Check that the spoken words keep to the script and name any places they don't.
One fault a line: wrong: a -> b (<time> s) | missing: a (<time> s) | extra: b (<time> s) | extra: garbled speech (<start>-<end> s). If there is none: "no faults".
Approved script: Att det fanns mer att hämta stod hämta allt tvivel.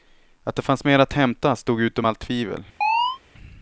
wrong: hämta -> utom (1.8 s)